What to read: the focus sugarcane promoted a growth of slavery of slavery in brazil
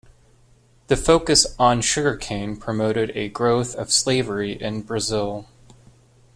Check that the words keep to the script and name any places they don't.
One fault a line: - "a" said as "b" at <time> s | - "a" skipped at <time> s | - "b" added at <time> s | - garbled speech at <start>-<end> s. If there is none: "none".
- "on" added at 1.6 s
- "of slavery" skipped at 4.5 s